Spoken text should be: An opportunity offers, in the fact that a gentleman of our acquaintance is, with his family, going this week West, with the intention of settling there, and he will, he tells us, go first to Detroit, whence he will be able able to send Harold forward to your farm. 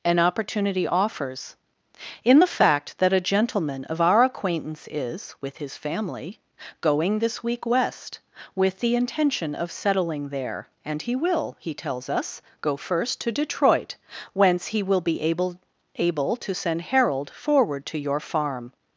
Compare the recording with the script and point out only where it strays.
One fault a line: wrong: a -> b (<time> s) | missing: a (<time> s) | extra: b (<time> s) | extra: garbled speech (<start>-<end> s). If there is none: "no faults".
no faults